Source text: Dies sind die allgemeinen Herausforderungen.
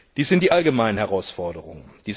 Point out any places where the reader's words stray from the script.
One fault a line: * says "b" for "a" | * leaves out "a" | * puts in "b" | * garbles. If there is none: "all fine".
all fine